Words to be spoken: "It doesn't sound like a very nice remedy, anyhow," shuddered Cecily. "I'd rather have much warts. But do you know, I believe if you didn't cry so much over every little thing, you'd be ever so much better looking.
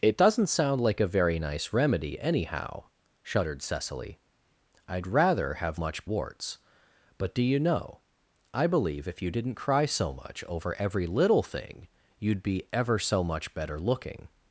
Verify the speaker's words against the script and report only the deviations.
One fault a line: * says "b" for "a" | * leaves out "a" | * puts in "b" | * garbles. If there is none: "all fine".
all fine